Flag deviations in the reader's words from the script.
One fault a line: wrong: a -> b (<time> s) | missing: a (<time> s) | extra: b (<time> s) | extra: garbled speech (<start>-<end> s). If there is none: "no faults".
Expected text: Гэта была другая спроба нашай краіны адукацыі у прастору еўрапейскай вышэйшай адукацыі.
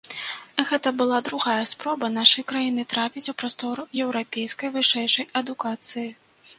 wrong: адукацыі -> трапіць (3.0 s)